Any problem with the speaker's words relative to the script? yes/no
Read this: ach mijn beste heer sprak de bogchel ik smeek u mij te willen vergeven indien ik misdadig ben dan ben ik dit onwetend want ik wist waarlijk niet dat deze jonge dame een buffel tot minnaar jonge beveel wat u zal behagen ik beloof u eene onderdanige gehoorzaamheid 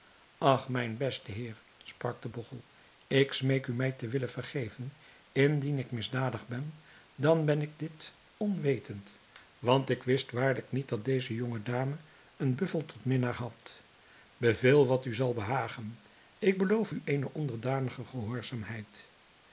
yes